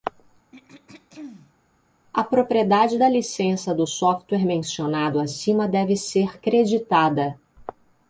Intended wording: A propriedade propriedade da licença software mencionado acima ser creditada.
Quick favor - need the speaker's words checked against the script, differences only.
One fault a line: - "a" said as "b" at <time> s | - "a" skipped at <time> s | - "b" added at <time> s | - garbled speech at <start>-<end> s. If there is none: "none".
- "propriedade" skipped at 3.0 s
- "do" added at 3.7 s
- "deve" added at 5.7 s